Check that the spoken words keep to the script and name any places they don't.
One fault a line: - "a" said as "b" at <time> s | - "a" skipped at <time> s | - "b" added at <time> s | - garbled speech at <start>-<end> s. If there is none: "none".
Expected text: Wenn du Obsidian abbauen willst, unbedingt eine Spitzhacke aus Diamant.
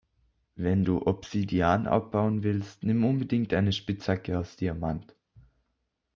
- "nimm" added at 2.8 s